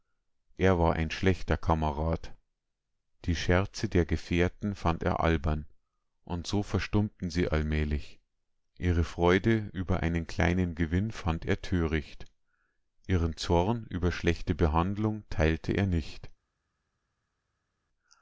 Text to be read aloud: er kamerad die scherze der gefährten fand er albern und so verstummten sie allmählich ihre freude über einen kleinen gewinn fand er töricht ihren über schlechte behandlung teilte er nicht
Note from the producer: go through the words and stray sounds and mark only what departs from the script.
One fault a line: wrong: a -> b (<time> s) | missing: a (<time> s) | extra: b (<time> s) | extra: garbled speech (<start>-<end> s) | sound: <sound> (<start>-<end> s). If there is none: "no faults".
extra: war ein schlechter (0.8 s)
extra: zorn (13.4 s)